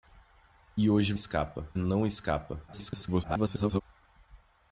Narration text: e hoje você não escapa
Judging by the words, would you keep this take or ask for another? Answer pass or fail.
fail